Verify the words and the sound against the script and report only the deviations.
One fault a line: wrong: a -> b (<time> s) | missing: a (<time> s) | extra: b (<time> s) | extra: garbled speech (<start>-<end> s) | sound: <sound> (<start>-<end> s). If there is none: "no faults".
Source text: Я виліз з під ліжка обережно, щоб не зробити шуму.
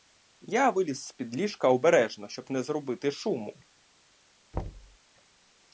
sound: thud (4.5-5.0 s)